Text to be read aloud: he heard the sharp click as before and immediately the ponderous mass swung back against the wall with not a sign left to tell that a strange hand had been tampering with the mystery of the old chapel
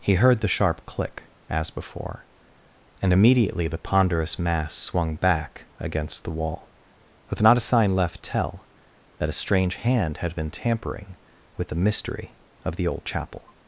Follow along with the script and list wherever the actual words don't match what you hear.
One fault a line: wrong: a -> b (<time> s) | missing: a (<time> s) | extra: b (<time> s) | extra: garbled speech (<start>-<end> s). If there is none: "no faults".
missing: to (8.2 s)